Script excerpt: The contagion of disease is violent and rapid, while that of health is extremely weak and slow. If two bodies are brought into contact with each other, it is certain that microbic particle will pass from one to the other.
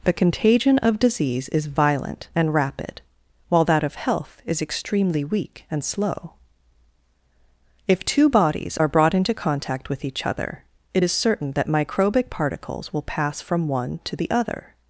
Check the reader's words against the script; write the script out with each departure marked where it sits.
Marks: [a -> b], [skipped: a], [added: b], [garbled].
The contagion of disease is violent and rapid, while that of health is extremely weak and slow. If two bodies are brought into contact with each other, it is certain that microbic [particle -> particles] will pass from one to the other.